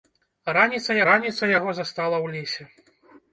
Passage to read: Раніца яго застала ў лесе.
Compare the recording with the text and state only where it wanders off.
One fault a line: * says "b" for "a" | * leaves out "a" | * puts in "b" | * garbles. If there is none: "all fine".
* puts in "раніца"